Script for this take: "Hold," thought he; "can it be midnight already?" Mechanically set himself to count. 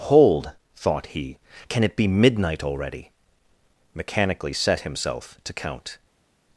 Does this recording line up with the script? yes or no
yes